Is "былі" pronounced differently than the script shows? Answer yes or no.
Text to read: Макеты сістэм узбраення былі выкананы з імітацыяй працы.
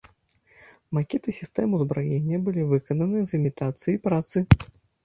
no